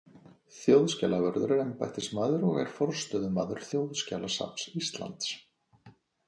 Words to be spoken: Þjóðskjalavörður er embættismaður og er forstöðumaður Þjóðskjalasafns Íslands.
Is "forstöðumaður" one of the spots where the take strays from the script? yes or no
no